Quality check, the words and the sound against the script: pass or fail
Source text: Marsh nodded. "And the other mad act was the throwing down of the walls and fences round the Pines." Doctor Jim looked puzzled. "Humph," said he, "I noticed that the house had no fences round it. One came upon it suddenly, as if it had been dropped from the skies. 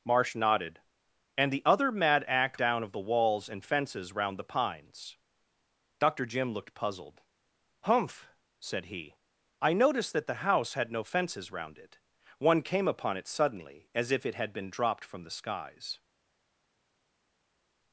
fail